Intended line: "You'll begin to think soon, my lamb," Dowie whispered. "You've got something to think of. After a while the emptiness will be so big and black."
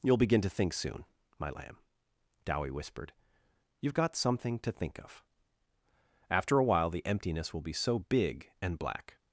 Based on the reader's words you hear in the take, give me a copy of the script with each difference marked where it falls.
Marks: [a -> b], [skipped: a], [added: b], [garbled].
"You'll begin to think soon, my lamb," Dowie whispered. "You've got something to think of. After a while the emptiness will be so big and black."